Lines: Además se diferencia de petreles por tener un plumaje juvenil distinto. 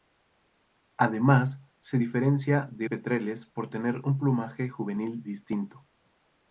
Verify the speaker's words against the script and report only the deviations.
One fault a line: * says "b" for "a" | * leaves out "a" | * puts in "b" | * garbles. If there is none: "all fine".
all fine